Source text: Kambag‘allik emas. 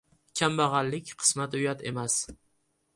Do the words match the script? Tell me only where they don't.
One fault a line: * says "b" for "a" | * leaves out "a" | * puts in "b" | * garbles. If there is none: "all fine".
* puts in "qismati uyat"